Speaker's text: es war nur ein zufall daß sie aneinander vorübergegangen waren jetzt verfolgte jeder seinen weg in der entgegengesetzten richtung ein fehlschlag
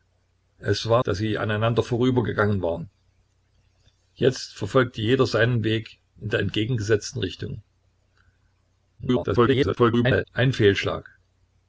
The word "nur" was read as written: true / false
false